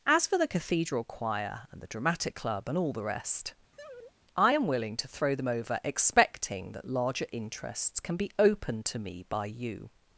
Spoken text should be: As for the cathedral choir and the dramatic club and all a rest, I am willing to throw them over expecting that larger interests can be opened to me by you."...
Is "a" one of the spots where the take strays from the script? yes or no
yes